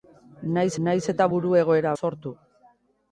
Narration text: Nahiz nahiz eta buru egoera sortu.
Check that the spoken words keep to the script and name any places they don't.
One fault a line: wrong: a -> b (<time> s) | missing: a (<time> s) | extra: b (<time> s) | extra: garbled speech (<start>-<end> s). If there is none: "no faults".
no faults